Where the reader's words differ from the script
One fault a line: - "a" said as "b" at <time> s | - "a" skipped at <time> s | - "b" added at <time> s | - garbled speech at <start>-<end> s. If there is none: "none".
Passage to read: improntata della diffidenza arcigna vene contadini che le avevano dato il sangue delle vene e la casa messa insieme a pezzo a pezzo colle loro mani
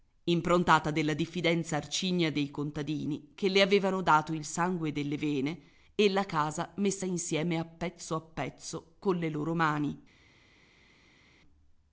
- "vene" said as "dei" at 2.3 s